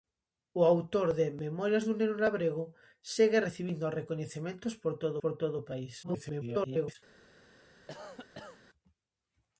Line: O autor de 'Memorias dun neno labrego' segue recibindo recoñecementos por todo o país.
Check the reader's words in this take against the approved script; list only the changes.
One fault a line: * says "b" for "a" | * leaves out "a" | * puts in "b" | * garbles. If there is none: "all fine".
* puts in "por todo"
* garbles